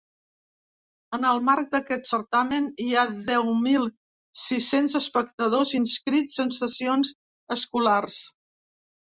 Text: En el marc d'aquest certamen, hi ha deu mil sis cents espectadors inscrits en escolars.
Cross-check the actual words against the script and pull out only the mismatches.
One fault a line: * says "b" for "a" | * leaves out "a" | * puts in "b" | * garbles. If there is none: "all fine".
* puts in "sessions"